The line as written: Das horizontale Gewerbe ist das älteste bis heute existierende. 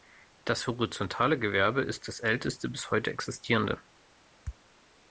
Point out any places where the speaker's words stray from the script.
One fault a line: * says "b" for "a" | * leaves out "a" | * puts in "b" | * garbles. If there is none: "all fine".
all fine